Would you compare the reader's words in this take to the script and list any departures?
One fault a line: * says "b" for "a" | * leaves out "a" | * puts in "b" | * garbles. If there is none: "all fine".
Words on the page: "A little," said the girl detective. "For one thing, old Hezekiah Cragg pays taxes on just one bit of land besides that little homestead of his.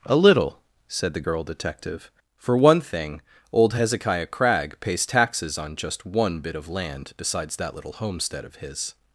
all fine